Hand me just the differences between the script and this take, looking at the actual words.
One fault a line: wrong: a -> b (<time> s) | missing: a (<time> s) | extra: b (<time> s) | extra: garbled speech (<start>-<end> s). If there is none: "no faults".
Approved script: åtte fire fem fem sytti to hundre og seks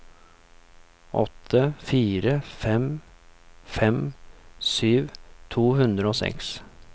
no faults